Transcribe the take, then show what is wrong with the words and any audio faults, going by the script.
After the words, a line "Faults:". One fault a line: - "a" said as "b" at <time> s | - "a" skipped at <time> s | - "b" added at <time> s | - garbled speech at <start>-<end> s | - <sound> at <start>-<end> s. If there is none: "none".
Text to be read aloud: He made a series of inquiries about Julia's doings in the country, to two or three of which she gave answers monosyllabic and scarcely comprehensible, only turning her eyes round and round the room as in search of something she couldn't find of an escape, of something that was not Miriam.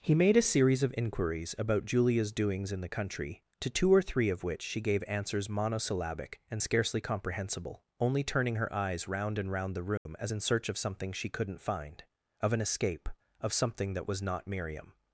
He made a series of inquiries about Julia's doings in the country, to two or three of which she gave answers monosyllabic and scarcely comprehensible, only turning her eyes round and round the room as in search of something she couldn't find of an escape, of something that was not Miriam.
Faults:
- dropout at 10.0-10.1 s